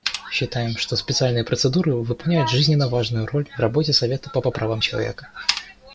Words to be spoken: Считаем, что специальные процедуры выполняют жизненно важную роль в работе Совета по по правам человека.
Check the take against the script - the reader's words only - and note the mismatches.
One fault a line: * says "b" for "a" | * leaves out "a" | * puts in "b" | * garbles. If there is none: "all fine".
all fine